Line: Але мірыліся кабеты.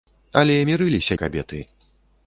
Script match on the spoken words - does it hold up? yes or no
yes